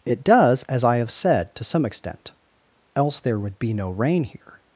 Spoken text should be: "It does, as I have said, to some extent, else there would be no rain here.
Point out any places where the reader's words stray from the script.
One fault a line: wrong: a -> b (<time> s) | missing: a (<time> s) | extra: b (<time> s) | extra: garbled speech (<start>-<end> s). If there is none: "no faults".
no faults